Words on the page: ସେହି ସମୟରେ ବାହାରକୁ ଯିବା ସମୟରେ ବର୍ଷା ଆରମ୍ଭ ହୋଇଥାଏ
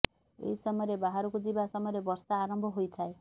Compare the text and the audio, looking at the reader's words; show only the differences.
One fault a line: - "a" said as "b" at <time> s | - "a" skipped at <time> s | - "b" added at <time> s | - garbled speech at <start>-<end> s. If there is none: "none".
- "ସେହି" said as "ଏହି" at 0.4 s